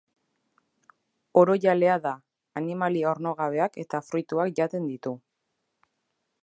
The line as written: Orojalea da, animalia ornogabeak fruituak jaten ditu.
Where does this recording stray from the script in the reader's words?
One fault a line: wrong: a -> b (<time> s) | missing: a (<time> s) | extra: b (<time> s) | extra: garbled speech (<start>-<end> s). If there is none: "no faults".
extra: eta (3.9 s)